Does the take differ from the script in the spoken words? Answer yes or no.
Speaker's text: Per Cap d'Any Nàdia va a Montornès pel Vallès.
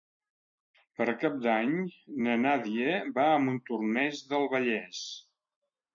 yes